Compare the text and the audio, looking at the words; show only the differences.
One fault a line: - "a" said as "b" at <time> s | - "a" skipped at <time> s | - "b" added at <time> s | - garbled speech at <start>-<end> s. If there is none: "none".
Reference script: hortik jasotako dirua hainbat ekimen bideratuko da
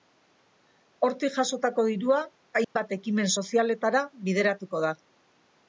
- "sozialetara" added at 3.4 s